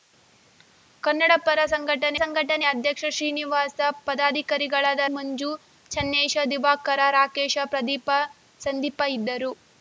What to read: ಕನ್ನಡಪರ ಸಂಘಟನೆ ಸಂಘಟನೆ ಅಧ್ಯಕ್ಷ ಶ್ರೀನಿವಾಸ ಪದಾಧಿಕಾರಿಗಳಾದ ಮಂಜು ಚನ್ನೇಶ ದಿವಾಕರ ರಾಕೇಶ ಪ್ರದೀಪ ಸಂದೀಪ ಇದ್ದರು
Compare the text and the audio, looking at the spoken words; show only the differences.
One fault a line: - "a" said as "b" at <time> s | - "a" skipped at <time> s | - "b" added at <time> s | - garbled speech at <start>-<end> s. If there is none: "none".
none